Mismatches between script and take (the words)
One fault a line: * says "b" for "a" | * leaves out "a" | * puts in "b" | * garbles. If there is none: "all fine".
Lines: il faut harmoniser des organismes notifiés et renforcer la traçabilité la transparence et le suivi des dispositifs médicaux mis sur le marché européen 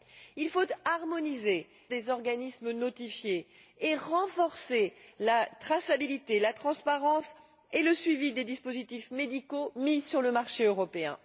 all fine